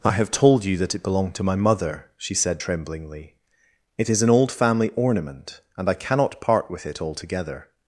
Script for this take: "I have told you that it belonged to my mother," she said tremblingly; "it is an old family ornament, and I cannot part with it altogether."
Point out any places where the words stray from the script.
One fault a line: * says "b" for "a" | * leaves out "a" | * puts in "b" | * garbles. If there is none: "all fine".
all fine